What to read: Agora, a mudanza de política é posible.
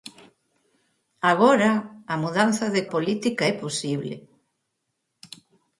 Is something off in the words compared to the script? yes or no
no